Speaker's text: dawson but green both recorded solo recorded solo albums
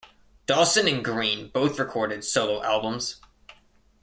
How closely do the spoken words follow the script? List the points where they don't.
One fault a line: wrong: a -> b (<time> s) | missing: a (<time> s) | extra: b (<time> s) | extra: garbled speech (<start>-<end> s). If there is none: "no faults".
wrong: but -> and (0.9 s)
missing: recorded solo (2.6 s)